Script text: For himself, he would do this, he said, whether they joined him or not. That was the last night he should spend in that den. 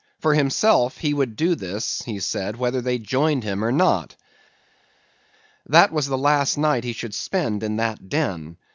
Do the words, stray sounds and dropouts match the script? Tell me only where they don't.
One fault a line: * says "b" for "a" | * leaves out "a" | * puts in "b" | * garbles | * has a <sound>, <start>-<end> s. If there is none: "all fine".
all fine